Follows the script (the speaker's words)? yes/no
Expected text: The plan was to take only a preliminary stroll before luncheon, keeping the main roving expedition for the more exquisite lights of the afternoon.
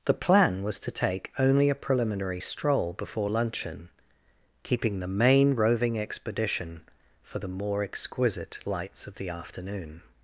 yes